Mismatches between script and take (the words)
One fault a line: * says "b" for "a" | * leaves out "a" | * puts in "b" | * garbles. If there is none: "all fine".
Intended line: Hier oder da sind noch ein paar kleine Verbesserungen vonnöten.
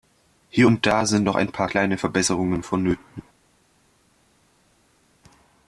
* says "und" for "oder"